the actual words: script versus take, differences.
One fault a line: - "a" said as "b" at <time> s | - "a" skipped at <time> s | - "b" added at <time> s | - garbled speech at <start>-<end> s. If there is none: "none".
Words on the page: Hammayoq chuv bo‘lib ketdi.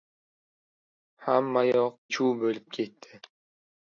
none